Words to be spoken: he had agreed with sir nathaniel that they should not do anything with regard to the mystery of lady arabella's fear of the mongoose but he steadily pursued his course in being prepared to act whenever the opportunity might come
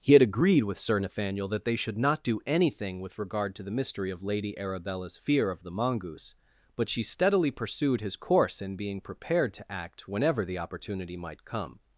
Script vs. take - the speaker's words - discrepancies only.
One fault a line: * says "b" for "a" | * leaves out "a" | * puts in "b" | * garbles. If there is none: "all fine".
* says "she" for "he"